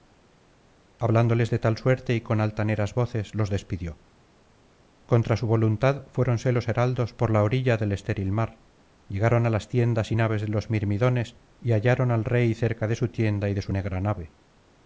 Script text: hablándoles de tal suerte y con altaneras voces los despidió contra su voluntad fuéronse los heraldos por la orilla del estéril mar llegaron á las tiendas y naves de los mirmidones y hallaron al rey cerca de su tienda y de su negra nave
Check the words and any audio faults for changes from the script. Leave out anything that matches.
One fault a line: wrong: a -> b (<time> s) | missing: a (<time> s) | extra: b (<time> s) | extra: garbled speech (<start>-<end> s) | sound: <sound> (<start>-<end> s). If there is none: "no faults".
no faults